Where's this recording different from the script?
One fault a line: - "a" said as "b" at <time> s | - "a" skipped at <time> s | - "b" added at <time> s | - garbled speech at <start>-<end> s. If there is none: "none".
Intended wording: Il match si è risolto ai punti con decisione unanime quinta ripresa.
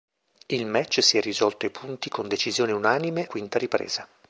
none